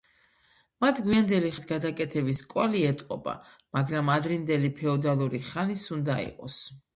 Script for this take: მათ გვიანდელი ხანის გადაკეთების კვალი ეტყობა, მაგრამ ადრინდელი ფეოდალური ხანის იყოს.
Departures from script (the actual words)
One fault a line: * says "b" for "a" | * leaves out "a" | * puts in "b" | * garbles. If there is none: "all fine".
* puts in "უნდა"